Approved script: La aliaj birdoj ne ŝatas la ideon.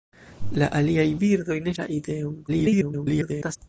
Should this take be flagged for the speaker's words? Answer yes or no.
yes